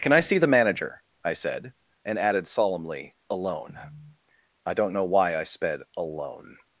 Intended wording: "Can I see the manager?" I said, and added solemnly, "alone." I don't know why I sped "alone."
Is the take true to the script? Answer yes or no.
yes